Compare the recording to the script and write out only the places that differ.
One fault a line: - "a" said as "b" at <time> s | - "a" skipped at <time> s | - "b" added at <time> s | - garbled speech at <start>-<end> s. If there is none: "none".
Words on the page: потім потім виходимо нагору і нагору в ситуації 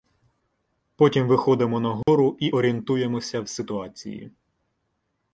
- "потім" skipped at 1.3 s
- "нагору" said as "орієнтуємося" at 2.5 s